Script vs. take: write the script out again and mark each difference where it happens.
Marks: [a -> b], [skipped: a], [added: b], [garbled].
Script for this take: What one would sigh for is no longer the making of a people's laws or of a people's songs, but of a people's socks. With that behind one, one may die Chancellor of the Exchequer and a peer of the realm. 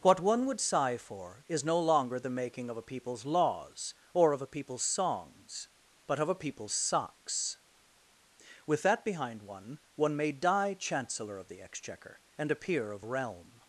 What one would sigh for is no longer the making of a people's laws or of a people's songs, but of a people's socks. With that behind one, one may die Chancellor of the Exchequer and a peer of [skipped: the] realm.